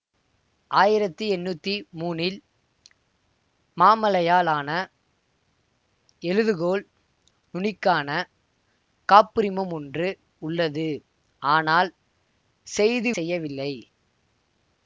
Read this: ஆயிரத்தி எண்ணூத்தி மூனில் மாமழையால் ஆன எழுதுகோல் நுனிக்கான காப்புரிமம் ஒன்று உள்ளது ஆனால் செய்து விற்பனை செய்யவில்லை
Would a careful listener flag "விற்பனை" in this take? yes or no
yes